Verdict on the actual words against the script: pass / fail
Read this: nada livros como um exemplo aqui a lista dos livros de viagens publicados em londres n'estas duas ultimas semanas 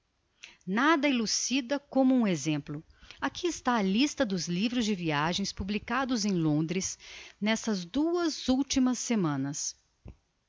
fail